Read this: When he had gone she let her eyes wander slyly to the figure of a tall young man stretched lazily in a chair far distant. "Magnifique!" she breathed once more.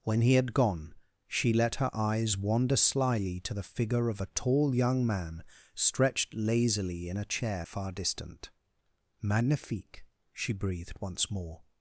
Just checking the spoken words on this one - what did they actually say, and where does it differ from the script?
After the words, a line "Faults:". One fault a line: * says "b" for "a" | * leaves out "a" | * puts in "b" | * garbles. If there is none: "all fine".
When he had gone she let her eyes wander slyly to the figure of a tall young man stretched lazily in a chair far distant. "Magnifique!" she breathed once more.
Faults:
all fine